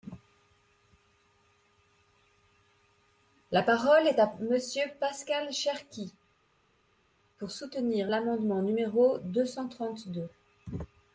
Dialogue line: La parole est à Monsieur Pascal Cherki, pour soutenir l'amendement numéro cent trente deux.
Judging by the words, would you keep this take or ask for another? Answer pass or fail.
fail